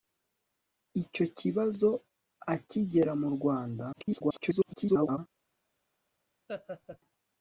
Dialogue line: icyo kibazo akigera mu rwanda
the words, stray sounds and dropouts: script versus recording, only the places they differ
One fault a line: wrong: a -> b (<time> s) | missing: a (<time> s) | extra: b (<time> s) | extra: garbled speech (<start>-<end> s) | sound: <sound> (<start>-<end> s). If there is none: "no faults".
extra: garbled speech (3.9-5.2 s)
sound: laugh (6.5-7.0 s)